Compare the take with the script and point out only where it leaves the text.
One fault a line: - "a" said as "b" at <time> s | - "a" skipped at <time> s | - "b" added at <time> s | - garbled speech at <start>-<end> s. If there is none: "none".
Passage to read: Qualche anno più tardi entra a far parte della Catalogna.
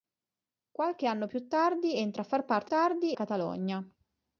- "della" said as "tardi" at 2.6 s